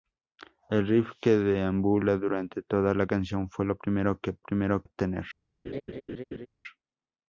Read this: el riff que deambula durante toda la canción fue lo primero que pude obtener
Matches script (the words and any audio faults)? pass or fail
fail